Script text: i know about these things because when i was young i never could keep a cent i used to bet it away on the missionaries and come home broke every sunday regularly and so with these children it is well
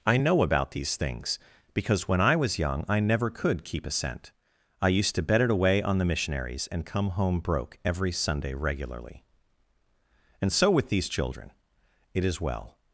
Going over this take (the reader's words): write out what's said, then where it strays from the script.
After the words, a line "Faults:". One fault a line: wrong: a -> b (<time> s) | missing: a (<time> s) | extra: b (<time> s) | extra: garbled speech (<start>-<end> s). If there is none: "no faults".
i know about these things because when i was young i never could keep a cent i used to bet it away on the missionaries and come home broke every sunday regularly and so with these children it is well
Faults:
no faults